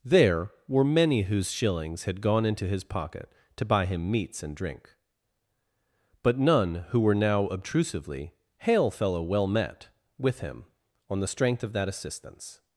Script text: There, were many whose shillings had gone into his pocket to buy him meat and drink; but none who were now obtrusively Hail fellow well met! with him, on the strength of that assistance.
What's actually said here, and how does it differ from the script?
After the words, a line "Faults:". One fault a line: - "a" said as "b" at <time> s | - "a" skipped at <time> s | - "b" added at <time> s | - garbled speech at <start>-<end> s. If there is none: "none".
There, were many whose shillings had gone into his pocket to buy him meats and drink; but none who were now obtrusively Hail fellow well met! with him, on the strength of that assistance.
Faults:
- "meat" said as "meats" at 4.1 s